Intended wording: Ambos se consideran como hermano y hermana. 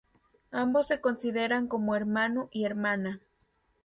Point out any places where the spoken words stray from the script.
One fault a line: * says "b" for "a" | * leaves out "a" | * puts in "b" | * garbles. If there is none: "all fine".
all fine